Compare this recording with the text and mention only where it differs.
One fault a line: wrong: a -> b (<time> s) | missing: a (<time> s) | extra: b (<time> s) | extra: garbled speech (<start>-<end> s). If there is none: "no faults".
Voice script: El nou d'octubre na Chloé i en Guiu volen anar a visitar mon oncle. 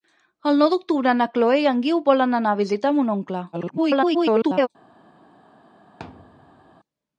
extra: garbled speech (3.5-4.7 s)